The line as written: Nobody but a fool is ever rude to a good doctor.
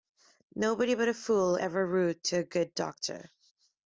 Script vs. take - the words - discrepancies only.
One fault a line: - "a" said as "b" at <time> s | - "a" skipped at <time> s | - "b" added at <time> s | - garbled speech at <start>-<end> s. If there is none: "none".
- "is" skipped at 1.6 s